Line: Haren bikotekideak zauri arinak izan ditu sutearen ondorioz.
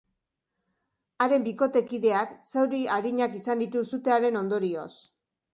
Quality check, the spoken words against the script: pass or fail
pass